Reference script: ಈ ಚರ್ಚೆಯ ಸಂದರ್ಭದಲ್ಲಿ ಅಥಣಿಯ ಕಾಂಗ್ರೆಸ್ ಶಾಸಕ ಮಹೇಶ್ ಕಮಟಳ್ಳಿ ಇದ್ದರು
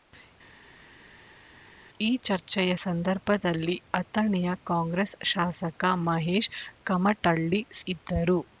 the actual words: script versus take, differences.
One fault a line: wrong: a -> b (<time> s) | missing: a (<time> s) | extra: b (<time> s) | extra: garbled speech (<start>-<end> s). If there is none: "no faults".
no faults